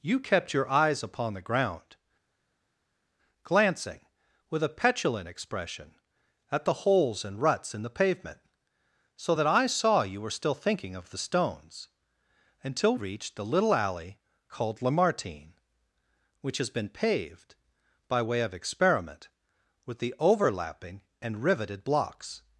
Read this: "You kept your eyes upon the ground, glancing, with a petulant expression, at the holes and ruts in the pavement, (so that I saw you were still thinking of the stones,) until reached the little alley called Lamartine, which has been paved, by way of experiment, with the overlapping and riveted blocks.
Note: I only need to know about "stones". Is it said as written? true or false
true